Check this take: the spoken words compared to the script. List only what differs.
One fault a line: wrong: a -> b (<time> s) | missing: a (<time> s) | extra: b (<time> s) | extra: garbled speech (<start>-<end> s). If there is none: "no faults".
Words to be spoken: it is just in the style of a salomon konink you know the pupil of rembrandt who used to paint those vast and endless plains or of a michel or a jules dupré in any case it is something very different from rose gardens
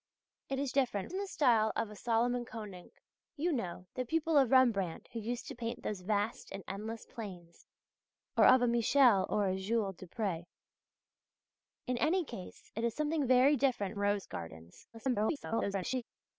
wrong: just -> different (0.7 s)
missing: from (14.0 s)
extra: garbled speech (14.9-16.0 s)